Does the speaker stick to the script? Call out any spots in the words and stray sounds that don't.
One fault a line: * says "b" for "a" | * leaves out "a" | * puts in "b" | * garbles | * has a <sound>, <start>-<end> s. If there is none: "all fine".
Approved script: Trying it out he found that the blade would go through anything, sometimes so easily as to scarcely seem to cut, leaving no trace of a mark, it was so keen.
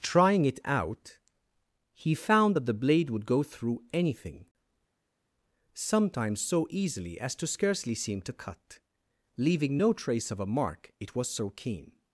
all fine